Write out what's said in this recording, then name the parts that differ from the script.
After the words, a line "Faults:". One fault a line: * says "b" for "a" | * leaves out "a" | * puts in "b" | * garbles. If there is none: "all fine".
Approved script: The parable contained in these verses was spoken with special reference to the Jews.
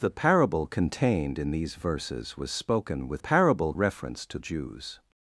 The parable contained in these verses was spoken with parable reference to Jews.
Faults:
* says "parable" for "special"
* leaves out "the"